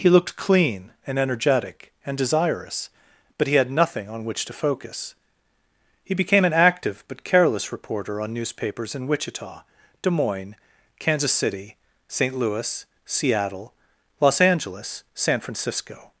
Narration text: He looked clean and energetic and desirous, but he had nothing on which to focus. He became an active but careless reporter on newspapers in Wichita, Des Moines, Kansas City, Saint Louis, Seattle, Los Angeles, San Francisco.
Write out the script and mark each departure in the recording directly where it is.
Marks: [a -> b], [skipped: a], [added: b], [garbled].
He looked clean and energetic and desirous, but he had nothing on which to focus. He became an active but careless reporter on newspapers in Wichita, Des Moines, Kansas City, Saint Louis, Seattle, Los Angeles, San Francisco.